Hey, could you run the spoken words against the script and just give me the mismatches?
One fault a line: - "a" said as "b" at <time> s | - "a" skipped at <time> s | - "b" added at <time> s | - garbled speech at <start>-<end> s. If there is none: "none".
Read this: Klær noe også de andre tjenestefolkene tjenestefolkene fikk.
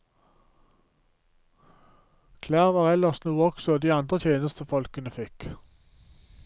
- "var ellers" added at 2.8 s
- "tjenestefolkene" skipped at 5.1 s